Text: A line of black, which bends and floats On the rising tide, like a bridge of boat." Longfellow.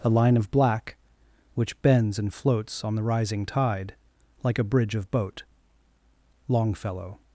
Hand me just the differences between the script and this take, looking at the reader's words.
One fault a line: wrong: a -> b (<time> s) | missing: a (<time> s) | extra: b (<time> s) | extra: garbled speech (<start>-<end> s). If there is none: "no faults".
no faults